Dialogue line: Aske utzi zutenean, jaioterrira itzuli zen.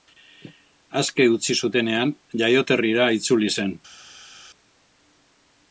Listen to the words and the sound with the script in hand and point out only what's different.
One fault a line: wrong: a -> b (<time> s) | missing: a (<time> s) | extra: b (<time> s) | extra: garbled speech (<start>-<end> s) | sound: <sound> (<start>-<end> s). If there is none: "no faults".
no faults